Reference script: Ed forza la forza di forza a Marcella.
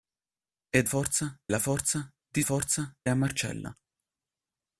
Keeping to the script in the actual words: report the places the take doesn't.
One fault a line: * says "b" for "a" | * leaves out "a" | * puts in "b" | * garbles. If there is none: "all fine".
all fine